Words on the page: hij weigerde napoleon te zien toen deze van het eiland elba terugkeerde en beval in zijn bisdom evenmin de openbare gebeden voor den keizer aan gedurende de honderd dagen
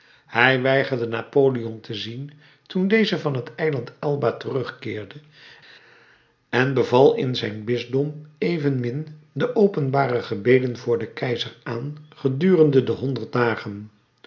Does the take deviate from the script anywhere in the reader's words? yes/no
no